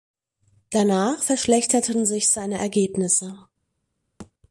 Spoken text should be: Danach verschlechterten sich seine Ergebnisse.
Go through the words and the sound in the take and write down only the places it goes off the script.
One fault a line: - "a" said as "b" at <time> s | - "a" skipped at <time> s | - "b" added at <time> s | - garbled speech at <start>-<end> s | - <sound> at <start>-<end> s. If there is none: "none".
- thud at 4.2-4.3 s